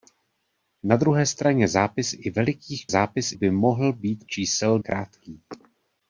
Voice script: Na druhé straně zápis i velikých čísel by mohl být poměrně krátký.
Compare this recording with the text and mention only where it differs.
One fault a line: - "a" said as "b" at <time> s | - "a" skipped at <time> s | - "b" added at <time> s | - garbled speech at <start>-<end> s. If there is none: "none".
- "čísel" said as "zápis" at 2.9 s
- "poměrně" said as "čísel" at 4.2 s